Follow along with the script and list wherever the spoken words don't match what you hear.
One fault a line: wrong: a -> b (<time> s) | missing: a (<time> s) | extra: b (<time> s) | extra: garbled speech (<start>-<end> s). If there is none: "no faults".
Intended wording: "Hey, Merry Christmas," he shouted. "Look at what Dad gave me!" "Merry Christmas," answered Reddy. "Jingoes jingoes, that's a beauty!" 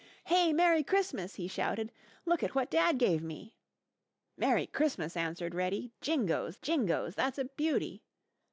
no faults